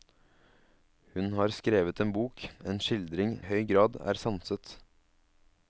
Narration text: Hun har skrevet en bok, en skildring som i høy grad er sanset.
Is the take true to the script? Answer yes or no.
no